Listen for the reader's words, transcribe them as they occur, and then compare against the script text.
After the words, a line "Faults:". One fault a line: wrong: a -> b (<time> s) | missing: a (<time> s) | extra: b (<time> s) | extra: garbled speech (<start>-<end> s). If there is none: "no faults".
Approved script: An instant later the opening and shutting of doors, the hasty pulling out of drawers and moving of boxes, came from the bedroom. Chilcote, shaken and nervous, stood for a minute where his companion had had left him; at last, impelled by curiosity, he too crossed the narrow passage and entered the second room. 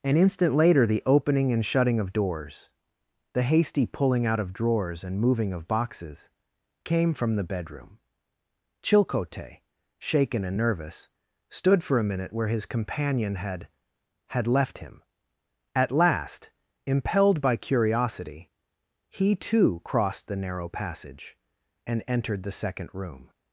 An instant later the opening and shutting of doors, the hasty pulling out of drawers and moving of boxes, came from the bedroom. Chilcote, shaken and nervous, stood for a minute where his companion had had left him; at last, impelled by curiosity, he too crossed the narrow passage and entered the second room.
Faults:
no faults